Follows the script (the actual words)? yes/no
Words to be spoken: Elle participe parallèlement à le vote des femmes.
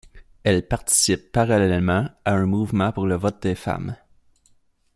no